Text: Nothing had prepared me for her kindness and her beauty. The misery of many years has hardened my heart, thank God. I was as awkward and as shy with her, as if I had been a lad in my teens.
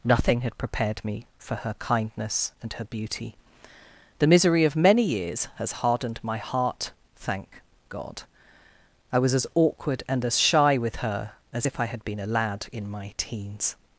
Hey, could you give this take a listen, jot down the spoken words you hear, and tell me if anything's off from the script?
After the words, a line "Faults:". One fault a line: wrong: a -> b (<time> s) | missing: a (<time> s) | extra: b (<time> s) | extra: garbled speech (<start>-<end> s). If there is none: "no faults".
Nothing had prepared me for her kindness and her beauty. The misery of many years has hardened my heart, thank God. I was as awkward and as shy with her, as if I had been a lad in my teens.
Faults:
no faults